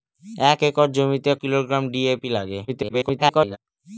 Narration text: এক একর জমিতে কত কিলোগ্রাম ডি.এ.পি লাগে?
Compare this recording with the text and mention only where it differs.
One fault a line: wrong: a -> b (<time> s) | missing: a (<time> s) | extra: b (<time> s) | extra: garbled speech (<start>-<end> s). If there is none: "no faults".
missing: কত (1.3 s)
extra: garbled speech (2.7-3.6 s)